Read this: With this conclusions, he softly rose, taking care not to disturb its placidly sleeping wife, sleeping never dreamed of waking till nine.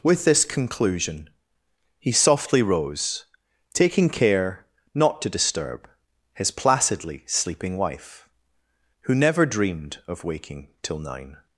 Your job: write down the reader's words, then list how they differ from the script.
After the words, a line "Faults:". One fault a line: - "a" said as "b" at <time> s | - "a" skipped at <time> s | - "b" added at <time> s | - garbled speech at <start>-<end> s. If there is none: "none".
With this conclusion, he softly rose, taking care not to disturb his placidly sleeping wife, who never dreamed of waking till nine.
Faults:
- "conclusions" said as "conclusion" at 0.5 s
- "its" said as "his" at 6.3 s
- "sleeping" said as "who" at 9.0 s